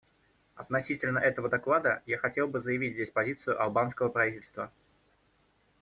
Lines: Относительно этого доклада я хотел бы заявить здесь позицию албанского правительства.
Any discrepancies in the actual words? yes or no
no